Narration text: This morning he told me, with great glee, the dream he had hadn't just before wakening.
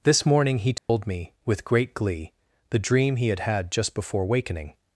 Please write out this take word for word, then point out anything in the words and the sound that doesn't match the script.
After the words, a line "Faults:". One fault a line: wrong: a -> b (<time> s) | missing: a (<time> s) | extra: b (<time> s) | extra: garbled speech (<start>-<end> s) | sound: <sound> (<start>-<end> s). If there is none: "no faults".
This morning he told me, with great glee, the dream he had had just before wakening.
Faults:
sound: dropout (0.8-0.9 s)
wrong: hadn't -> had (3.4 s)